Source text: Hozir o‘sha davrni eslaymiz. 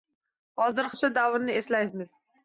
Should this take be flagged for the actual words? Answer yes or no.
no